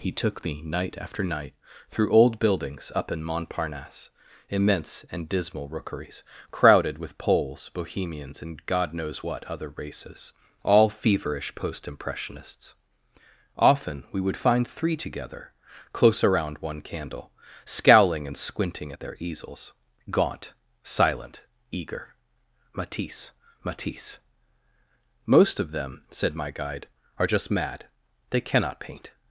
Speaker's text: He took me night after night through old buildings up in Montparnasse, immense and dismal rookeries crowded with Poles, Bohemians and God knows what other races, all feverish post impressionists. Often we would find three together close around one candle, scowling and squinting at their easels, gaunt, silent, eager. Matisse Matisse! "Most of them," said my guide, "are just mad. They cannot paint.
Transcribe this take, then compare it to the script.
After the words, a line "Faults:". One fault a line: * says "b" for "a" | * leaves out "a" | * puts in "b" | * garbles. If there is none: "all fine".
He took me night after night through old buildings up in Montparnasse, immense and dismal rookeries crowded with Poles, Bohemians and God knows what other races, all feverish post impressionists. Often we would find three together close around one candle, scowling and squinting at their easels, gaunt, silent, eager. Matisse Matisse! "Most of them," said my guide, "are just mad. They cannot paint.
Faults:
all fine